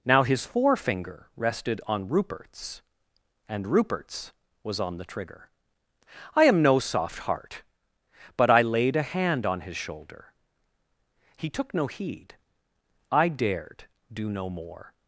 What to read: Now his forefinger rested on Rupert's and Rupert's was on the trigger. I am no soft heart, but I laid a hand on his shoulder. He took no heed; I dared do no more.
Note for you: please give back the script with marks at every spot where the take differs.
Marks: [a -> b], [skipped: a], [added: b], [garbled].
Now his forefinger rested on Rupert's and Rupert's was on the trigger. I am no soft heart, but I laid a hand on his shoulder. He took no heed; I dared do no more.